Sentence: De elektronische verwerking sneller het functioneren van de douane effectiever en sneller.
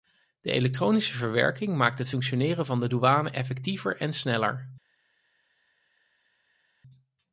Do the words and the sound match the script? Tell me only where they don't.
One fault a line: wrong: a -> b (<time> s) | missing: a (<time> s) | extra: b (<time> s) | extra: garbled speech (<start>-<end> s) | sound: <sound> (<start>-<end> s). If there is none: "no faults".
wrong: sneller -> maakt (1.8 s)